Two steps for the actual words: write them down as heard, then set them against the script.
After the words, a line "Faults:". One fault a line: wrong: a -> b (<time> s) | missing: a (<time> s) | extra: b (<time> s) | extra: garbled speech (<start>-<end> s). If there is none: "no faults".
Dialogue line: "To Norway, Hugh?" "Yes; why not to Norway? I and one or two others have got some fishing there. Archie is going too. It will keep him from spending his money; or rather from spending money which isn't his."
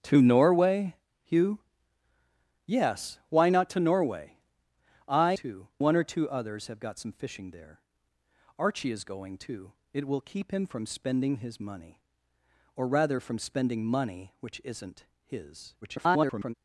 "To Norway, Hugh?" "Yes; why not to Norway? I too one or two others have got some fishing there. Archie is going too. It will keep him from spending his money; or rather from spending money which isn't his." [garbled]
Faults:
wrong: and -> too (5.3 s)
extra: garbled speech (15.8-16.5 s)